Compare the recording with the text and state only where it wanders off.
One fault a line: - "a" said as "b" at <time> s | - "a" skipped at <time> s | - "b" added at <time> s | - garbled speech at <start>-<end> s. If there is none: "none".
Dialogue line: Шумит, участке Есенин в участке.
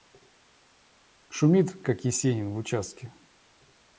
- "участке" said as "как" at 1.8 s